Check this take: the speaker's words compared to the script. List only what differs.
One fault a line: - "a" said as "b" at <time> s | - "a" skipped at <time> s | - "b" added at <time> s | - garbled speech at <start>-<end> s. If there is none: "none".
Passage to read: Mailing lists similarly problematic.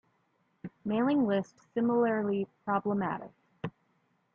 none